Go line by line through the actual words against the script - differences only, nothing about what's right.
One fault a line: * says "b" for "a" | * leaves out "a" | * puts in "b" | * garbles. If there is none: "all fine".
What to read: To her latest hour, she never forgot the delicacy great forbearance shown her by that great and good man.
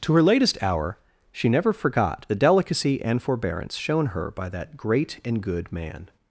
* says "and" for "great"